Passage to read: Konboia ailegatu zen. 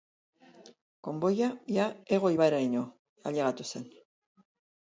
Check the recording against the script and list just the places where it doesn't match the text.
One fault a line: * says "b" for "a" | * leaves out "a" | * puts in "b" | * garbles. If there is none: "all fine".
* puts in "ia Ego ibairaino"